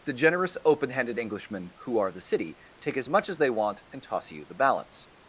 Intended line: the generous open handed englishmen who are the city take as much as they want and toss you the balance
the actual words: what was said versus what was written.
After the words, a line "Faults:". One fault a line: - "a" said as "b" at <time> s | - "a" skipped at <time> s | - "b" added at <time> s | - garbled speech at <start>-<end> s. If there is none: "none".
the generous open handed englishmen who are the city take as much as they want and toss you the balance
Faults:
none